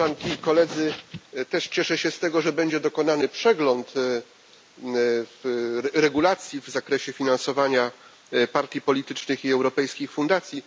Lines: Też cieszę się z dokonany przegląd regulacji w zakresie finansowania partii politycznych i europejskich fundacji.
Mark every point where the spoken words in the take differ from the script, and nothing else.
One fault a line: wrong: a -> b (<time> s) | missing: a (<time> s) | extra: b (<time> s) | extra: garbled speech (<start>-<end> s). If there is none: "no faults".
extra: tego że będzie (2.2 s)